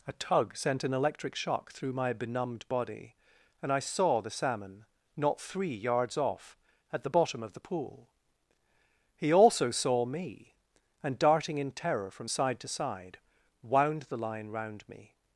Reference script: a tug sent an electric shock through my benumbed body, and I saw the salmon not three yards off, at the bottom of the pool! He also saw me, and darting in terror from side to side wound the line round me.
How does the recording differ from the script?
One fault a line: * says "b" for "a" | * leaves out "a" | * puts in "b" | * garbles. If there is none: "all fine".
all fine